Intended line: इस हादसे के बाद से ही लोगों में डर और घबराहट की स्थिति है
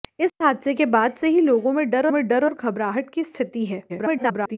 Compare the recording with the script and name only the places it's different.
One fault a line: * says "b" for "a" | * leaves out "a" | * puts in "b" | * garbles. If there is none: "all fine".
* puts in "में डर"
* garbles